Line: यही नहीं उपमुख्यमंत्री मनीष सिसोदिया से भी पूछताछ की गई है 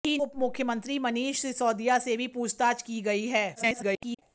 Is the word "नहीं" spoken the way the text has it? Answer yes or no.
no